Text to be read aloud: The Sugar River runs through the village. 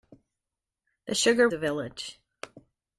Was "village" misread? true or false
false